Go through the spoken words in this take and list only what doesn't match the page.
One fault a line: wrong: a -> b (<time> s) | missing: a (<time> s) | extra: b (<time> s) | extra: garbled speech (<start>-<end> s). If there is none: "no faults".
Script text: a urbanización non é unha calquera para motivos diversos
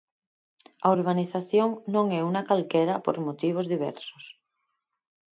wrong: para -> por (3.0 s)